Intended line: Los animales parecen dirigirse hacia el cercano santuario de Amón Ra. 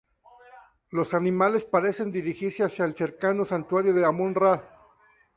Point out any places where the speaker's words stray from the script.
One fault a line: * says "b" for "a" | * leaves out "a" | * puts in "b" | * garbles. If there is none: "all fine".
all fine